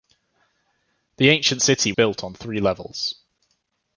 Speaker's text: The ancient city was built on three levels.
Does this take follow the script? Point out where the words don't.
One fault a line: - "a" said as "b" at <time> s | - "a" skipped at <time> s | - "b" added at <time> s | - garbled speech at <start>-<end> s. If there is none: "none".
- "was" skipped at 1.9 s